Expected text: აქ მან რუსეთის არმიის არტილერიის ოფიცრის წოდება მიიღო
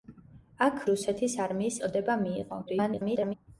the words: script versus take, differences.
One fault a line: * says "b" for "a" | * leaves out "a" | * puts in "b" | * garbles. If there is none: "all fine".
* leaves out "მან"
* leaves out "არტილერიის ოფიცრის"
* garbles